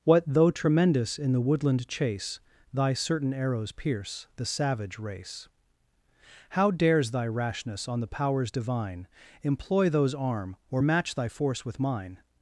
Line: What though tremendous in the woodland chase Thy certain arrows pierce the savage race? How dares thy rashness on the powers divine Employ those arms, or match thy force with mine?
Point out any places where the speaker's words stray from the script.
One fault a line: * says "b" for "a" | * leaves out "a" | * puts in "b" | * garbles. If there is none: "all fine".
* says "arm" for "arms"